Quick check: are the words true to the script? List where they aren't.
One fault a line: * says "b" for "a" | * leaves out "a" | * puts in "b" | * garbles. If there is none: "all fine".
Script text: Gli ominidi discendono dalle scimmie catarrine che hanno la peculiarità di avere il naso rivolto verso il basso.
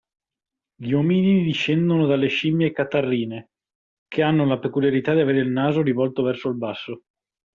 all fine